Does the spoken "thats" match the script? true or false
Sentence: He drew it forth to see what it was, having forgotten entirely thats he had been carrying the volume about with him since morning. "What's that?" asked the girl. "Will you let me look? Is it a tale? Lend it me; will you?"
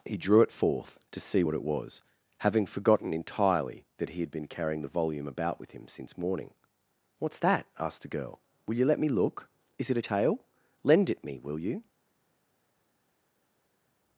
false